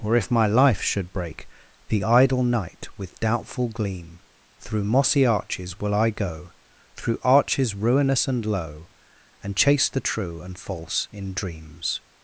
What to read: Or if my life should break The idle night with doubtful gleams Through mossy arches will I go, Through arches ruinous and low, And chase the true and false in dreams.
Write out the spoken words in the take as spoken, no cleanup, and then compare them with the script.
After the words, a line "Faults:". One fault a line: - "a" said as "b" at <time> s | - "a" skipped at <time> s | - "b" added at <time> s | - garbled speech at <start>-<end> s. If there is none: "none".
Or if my life should break The idle night with doubtful gleam Through mossy arches will I go, Through arches ruinous and low, And chase the true and false in dreams.
Faults:
- "gleams" said as "gleam" at 3.7 s